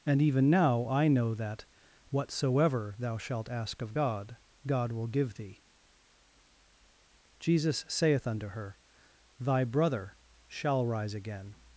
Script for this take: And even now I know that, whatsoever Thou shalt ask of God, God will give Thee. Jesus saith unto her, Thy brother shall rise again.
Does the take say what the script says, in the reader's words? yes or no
yes